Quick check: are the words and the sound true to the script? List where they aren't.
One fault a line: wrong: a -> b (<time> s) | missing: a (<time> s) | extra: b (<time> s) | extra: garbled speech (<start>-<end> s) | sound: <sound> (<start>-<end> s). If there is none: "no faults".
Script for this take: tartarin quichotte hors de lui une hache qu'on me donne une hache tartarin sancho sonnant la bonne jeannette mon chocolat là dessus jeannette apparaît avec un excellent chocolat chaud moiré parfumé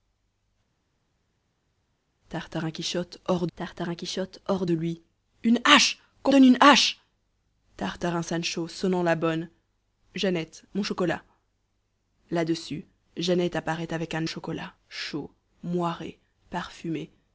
extra: tartarin quichotte hors (3.6 s)
missing: me (6.3 s)
missing: excellent (14.3 s)